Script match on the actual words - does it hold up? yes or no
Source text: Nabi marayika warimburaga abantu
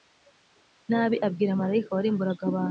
no